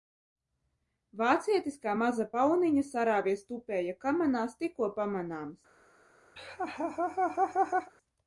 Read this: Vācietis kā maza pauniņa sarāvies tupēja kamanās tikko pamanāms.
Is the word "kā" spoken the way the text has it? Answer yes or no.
yes